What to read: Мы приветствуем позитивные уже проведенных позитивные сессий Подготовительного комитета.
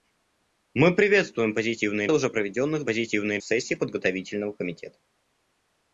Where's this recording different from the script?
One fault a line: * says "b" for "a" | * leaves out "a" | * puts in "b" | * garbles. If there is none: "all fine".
all fine